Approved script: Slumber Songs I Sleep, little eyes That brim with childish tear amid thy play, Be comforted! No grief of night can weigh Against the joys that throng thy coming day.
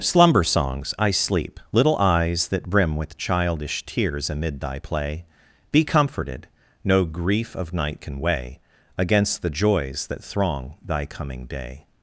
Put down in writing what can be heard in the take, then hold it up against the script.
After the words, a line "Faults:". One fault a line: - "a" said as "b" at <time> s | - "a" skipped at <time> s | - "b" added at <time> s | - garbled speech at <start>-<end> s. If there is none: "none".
Slumber Songs I Sleep, little eyes That brim with childish tears amid thy play, Be comforted! No grief of night can weigh Against the joys that throng thy coming day.
Faults:
- "tear" said as "tears" at 3.9 s